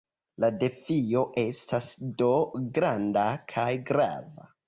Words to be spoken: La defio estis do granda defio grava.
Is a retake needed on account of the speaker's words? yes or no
yes